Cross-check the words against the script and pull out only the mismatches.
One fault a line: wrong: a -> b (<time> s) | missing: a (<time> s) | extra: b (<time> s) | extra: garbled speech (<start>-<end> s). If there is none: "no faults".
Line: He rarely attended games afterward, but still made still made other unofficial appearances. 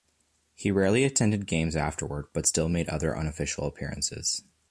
missing: still made (2.9 s)